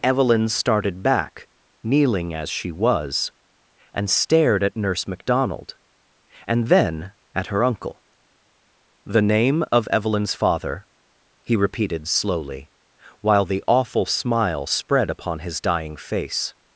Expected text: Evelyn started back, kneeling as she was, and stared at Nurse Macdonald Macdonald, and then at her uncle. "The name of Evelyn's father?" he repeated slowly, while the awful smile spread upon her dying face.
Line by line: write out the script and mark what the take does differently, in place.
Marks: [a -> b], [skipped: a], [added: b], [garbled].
Evelyn started back, kneeling as she was, and stared at Nurse Macdonald [skipped: Macdonald,] and then at her uncle. "The name of Evelyn's father?" he repeated slowly, while the awful smile spread upon [her -> his] dying face.